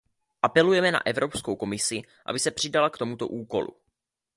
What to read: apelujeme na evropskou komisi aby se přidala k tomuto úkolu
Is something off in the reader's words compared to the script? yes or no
no